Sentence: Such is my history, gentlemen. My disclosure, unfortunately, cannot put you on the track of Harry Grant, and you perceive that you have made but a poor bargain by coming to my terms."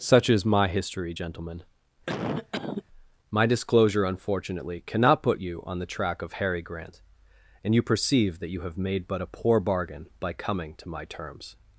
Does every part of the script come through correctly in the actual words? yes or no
yes